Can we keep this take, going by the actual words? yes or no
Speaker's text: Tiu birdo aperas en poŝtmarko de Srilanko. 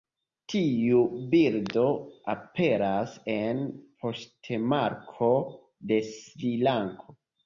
yes